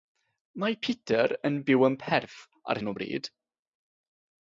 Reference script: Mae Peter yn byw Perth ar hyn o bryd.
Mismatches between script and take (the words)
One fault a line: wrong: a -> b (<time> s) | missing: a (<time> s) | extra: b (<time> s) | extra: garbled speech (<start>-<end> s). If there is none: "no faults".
extra: yn (1.9 s)